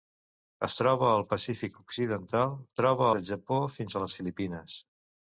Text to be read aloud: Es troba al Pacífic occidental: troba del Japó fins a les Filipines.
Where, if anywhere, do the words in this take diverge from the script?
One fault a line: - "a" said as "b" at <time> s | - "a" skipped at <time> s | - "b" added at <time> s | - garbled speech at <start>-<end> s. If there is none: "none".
none